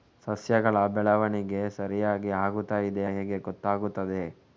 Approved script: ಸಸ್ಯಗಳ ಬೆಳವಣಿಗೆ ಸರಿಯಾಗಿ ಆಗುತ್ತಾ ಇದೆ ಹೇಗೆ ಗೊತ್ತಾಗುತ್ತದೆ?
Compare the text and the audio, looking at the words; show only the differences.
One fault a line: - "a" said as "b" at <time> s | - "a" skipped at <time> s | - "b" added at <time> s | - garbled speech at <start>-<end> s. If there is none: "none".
none